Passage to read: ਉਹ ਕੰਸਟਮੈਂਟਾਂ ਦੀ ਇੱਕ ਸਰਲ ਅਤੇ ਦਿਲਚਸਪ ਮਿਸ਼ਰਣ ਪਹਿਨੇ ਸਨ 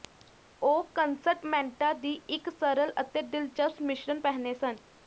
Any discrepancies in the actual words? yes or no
no